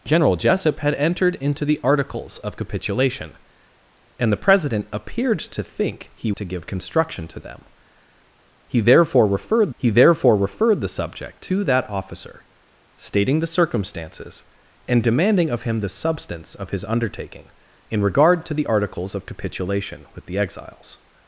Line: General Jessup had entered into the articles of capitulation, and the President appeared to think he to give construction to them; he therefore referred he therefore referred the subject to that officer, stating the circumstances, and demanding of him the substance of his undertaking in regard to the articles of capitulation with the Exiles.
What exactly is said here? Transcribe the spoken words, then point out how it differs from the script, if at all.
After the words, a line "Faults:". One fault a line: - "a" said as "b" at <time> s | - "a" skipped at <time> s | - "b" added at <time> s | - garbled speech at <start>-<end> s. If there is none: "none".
General Jessup had entered into the articles of capitulation, and the President appeared to think he to give construction to them; he therefore referred he therefore referred the subject to that officer, stating the circumstances, and demanding of him the substance of his undertaking in regard to the articles of capitulation with the Exiles.
Faults:
none